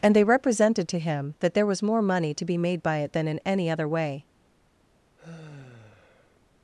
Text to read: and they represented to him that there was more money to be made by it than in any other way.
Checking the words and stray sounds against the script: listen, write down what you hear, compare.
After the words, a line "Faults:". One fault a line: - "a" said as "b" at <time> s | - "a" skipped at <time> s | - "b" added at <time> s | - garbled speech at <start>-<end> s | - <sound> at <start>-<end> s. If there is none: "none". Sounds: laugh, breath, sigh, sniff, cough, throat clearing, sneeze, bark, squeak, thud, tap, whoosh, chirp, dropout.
and they represented to him that there was more money to be made by it than in any other way.
Faults:
- sigh at 5.2-6.4 s